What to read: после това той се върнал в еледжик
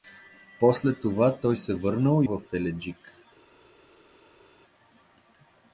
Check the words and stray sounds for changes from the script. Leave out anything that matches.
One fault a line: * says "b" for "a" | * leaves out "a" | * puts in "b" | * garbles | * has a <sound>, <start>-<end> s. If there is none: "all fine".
all fine